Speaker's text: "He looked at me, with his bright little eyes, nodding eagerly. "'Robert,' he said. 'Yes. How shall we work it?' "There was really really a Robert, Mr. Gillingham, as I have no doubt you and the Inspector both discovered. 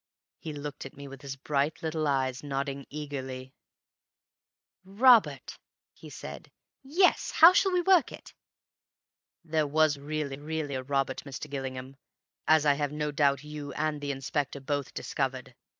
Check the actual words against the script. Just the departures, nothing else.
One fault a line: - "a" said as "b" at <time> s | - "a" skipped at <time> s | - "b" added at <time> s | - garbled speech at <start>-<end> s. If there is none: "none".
none